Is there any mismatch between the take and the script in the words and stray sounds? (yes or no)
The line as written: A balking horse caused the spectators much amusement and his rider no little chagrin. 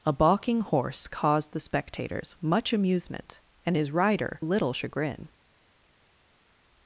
yes